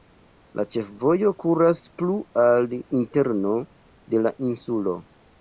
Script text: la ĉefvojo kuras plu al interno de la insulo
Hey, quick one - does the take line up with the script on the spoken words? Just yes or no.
yes